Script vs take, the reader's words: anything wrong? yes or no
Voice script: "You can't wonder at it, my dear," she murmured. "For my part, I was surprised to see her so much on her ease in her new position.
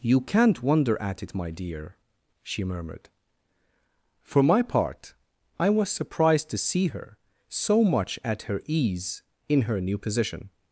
yes